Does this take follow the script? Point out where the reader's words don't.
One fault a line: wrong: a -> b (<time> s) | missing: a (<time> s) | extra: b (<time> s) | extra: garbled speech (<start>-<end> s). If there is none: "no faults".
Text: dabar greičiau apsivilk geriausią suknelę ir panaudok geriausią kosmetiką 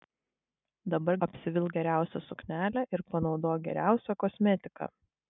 missing: greičiau (1.2 s)